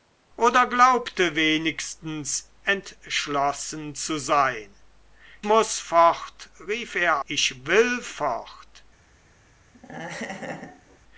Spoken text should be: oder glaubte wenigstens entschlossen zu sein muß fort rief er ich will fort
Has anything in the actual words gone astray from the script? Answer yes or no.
no